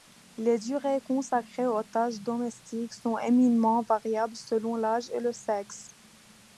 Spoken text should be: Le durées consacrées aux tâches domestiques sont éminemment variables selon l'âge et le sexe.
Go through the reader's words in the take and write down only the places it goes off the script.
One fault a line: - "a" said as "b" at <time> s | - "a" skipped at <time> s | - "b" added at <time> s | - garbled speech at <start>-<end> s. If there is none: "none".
- "Le" said as "Les" at 0.3 s